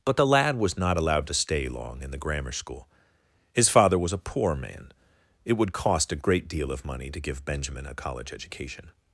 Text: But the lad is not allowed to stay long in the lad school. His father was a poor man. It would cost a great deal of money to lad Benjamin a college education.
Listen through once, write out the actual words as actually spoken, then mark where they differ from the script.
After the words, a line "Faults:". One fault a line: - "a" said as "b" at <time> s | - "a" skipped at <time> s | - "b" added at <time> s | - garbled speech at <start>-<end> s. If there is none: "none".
But the lad was not allowed to stay long in the grammar school. His father was a poor man. It would cost a great deal of money to give Benjamin a college education.
Faults:
- "is" said as "was" at 0.6 s
- "lad" said as "grammar" at 2.2 s
- "lad" said as "give" at 7.2 s